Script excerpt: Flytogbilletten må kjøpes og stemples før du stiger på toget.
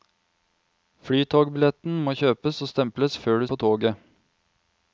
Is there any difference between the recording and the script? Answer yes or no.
yes